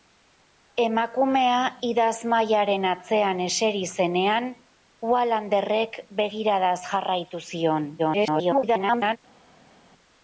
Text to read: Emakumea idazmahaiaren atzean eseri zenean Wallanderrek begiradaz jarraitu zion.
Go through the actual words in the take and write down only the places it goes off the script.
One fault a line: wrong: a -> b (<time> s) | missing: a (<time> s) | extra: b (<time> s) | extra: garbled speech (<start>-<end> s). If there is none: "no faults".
extra: garbled speech (8.0-9.2 s)